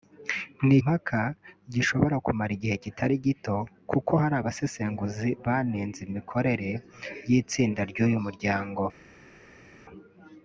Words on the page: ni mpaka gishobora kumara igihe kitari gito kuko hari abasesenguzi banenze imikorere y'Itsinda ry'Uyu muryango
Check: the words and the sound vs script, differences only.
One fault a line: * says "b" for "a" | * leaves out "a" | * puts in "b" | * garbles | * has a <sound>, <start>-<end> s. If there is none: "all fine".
all fine